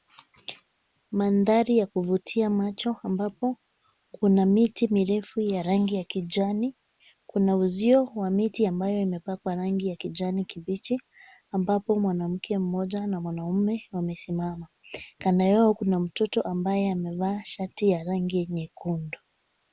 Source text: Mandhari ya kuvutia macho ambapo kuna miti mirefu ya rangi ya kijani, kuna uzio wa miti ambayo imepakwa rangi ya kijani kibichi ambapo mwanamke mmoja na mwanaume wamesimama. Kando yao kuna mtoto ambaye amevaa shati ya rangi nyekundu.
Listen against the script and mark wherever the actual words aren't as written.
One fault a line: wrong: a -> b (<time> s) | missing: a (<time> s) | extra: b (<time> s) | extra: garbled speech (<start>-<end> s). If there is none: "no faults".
no faults